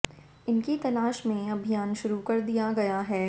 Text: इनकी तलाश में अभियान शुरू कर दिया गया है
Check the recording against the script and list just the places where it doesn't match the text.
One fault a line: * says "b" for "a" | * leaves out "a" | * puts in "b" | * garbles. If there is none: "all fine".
all fine